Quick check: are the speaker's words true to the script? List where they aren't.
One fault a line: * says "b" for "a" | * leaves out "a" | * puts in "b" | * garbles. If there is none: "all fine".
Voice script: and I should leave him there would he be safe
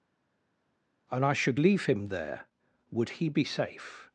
all fine